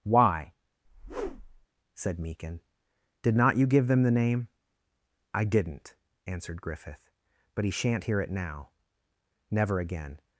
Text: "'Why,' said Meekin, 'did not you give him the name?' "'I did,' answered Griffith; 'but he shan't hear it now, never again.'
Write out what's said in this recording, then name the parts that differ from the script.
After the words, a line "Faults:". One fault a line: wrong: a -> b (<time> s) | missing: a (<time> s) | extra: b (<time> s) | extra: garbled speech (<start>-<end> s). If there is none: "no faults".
"'Why,' said Meekin, 'did not you give them the name?' "'I didn't,' answered Griffith; 'but he shan't hear it now, never again.'
Faults:
wrong: him -> them (3.9 s)
wrong: did -> didn't (5.5 s)